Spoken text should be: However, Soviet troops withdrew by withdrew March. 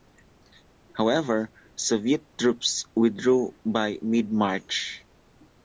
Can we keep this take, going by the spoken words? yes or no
no